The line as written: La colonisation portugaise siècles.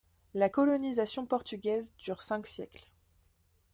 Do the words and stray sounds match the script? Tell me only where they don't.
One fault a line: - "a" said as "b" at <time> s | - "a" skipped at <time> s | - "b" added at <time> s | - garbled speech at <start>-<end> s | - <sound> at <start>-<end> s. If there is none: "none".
- "dure cinq" added at 2.0 s